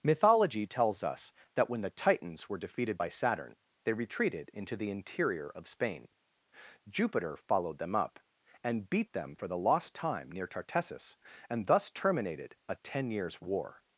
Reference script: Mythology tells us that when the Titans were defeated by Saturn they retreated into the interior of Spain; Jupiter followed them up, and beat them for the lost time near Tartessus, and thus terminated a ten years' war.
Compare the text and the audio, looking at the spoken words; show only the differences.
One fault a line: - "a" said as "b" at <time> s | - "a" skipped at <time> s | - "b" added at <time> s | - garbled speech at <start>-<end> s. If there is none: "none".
none